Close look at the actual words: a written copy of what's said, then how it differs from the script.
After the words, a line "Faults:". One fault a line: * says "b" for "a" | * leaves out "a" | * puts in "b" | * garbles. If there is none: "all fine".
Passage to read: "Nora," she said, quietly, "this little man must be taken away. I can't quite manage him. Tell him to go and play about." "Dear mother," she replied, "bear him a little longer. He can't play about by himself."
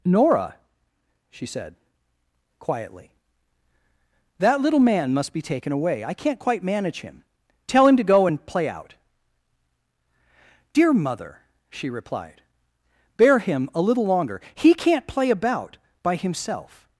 "Nora," she said, quietly, "that little man must be taken away. I can't quite manage him. Tell him to go and play out." "Dear mother," she replied, "bear him a little longer. He can't play about by himself."
Faults:
* says "that" for "this"
* says "out" for "about"